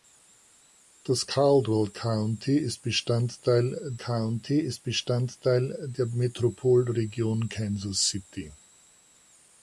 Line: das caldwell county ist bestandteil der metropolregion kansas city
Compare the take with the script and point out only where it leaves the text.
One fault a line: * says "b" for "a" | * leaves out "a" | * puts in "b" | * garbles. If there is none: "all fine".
* puts in "county ist bestandteil"